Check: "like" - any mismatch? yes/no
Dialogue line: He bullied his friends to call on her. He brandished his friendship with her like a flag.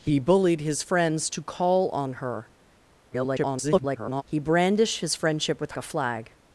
yes